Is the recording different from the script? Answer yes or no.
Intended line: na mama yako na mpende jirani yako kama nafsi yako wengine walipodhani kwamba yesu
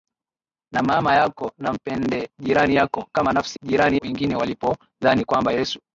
yes